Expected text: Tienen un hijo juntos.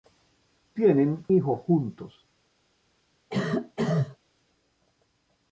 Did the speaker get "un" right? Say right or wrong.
wrong